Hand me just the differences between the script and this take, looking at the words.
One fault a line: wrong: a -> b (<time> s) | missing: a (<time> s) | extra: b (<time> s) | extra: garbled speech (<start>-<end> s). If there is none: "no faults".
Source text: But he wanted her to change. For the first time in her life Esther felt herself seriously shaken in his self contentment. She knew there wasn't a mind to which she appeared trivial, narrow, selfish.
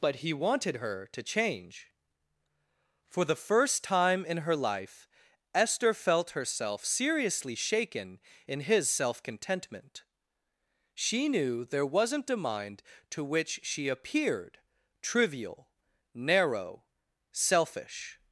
no faults